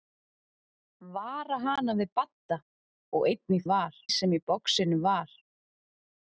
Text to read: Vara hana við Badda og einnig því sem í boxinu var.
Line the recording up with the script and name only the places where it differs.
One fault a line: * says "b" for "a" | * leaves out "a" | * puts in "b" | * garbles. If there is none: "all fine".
* says "var" for "því"